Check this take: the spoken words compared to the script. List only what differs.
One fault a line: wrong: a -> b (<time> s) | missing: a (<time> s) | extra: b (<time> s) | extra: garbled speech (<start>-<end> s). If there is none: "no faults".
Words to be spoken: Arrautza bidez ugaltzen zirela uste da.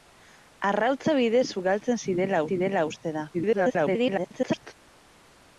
extra: zirela (2.5 s)
extra: garbled speech (3.3-4.7 s)